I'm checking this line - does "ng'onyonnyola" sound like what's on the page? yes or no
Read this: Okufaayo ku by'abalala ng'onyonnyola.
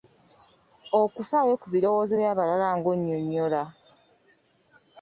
yes